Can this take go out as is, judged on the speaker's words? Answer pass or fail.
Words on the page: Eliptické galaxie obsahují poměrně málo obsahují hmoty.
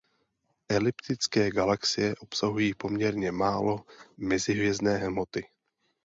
fail